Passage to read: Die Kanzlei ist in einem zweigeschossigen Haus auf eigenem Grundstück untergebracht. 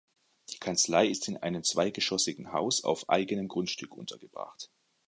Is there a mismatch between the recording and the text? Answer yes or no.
no